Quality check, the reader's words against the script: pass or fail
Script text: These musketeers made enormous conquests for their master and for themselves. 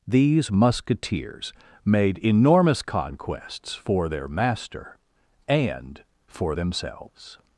pass